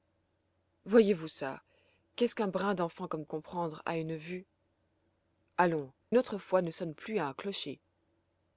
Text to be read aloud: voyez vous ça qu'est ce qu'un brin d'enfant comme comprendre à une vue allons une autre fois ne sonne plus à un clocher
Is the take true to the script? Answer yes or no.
yes